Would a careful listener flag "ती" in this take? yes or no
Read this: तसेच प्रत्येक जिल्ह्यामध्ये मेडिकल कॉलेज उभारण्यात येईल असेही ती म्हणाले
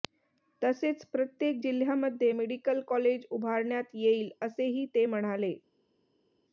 yes